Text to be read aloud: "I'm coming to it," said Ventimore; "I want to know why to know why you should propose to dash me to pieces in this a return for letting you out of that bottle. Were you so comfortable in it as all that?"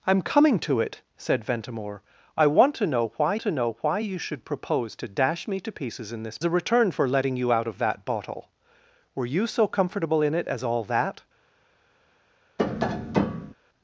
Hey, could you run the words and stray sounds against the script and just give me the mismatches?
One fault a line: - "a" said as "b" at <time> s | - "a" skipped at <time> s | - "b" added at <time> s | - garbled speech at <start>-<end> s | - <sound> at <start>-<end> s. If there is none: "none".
- tap at 12.6-13.5 s